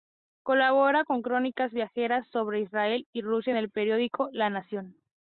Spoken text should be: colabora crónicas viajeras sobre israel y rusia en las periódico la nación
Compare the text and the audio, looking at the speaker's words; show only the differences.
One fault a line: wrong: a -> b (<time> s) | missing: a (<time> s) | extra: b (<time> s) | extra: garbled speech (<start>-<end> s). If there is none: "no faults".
extra: con (1.0 s)
wrong: las -> el (3.6 s)